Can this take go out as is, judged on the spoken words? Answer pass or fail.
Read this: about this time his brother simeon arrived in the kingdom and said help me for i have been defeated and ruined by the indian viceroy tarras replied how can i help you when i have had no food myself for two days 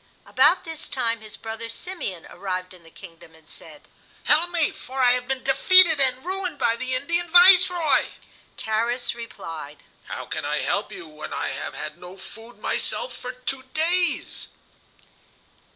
pass